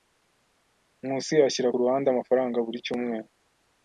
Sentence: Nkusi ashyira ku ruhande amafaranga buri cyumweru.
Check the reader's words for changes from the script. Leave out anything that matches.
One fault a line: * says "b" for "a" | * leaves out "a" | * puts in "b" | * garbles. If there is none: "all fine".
all fine